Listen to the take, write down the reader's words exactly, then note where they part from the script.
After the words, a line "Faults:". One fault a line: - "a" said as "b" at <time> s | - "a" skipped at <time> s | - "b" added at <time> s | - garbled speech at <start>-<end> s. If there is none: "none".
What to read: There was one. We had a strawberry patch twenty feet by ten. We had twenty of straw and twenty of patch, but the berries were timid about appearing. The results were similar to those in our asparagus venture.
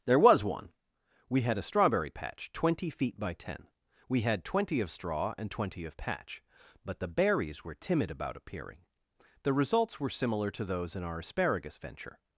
There was one. We had a strawberry patch twenty feet by ten. We had twenty of straw and twenty of patch, but the berries were timid about appearing. The results were similar to those in our asparagus venture.
Faults:
none